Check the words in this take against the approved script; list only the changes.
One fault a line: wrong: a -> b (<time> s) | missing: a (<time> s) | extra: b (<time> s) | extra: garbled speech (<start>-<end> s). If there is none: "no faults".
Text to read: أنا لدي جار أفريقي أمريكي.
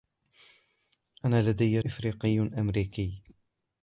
missing: جار (1.8 s)